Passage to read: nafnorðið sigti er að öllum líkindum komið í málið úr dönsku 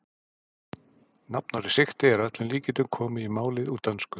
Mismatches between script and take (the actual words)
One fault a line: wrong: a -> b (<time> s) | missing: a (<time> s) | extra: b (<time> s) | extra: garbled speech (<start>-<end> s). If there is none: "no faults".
no faults